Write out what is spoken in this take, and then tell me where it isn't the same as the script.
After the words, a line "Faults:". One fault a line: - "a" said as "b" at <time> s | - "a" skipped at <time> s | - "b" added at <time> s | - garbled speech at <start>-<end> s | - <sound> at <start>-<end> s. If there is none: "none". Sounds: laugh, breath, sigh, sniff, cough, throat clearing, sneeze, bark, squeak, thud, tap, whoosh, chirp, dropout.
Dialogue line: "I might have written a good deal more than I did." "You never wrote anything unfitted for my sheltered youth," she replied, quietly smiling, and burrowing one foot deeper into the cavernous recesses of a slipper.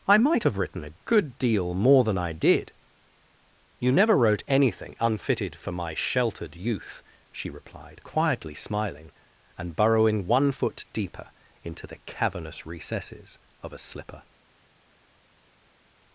"I might have written a good deal more than I did." "You never wrote anything unfitted for my sheltered youth," she replied, quietly smiling, and burrowing one foot deeper into the cavernous recesses of a slipper.
Faults:
none